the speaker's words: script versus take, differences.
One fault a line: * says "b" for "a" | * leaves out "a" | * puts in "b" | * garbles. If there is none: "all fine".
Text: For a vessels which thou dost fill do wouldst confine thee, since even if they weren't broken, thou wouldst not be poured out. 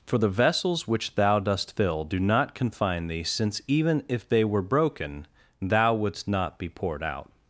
* says "the" for "a"
* says "not" for "wouldst"
* says "were" for "weren't"